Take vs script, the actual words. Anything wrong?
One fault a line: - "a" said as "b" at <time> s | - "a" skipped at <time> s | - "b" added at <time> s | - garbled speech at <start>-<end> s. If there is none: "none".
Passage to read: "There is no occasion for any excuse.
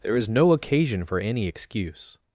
none